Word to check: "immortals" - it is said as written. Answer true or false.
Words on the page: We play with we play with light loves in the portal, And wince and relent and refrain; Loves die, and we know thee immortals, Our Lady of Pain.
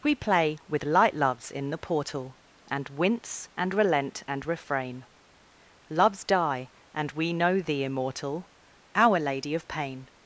false